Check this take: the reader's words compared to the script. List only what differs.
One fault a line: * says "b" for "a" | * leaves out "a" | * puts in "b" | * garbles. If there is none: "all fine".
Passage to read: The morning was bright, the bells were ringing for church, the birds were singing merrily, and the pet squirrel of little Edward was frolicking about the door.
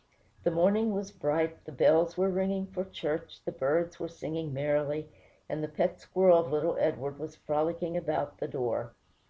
all fine